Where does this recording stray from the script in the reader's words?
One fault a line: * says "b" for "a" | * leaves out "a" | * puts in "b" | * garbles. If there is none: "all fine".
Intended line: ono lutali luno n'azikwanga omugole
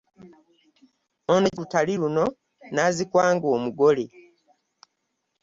all fine